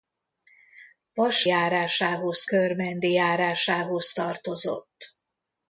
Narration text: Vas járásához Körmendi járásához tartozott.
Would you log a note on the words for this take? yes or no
no